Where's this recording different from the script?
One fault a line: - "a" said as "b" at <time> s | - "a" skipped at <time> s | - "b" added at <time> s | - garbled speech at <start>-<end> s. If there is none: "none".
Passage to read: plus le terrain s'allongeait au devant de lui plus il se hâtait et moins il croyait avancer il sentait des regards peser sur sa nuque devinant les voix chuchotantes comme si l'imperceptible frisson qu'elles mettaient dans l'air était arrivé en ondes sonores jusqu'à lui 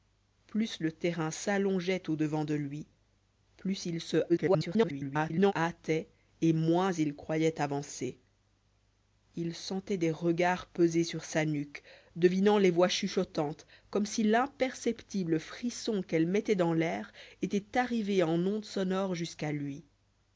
- garbled speech at 4.3-5.5 s